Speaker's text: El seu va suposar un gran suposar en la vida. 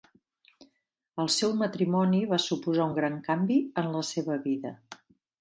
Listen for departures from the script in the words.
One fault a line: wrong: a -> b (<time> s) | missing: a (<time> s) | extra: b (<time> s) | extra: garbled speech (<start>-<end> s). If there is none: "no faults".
extra: matrimoni (1.6 s)
wrong: suposar -> canvi (3.3 s)
extra: seva (4.1 s)